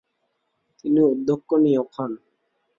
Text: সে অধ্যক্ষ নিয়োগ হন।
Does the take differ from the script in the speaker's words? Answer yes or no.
yes